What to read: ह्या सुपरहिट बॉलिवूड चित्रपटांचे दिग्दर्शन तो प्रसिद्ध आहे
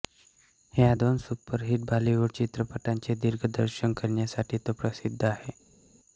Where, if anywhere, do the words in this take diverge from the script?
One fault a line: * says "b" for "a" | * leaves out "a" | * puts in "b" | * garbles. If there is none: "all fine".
* puts in "दोन"
* puts in "करण्यासाठी"